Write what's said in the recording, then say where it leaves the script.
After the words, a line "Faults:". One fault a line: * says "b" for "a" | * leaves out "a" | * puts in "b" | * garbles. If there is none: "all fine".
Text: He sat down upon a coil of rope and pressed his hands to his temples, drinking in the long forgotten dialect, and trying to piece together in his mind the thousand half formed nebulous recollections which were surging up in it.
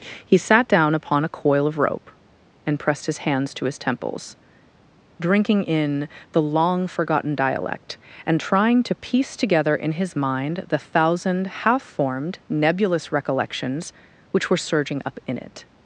He sat down upon a coil of rope and pressed his hands to his temples, drinking in the long forgotten dialect, and trying to piece together in his mind the thousand half formed nebulous recollections which were surging up in it.
Faults:
all fine